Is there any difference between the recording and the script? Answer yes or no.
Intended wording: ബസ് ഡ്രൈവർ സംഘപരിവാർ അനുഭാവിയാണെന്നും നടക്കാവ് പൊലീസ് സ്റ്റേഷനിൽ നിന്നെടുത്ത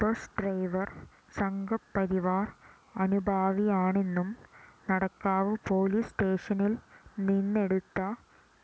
no